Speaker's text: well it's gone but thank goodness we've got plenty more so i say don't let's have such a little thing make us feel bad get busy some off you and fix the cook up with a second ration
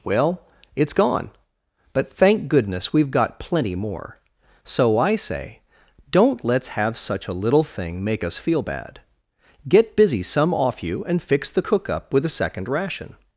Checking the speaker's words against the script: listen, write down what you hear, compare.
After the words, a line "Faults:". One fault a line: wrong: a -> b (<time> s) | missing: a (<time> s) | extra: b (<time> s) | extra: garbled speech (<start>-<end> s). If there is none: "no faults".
well it's gone but thank goodness we've got plenty more so i say don't let's have such a little thing make us feel bad get busy some off you and fix the cook up with a second ration
Faults:
no faults